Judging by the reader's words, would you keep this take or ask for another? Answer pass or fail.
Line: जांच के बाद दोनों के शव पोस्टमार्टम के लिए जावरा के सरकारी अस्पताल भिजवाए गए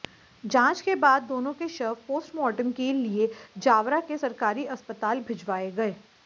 pass